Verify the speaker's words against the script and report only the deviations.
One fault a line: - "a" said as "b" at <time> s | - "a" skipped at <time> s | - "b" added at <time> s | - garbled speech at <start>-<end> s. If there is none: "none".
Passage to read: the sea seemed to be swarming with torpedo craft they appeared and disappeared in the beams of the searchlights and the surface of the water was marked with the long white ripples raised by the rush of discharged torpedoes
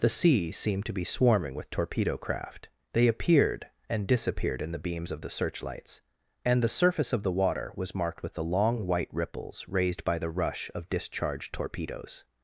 none